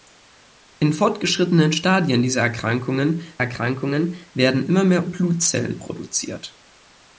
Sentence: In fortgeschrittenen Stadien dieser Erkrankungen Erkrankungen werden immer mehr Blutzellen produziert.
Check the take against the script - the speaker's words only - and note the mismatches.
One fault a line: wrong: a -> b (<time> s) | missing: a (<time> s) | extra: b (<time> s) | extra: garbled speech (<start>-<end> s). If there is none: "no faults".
no faults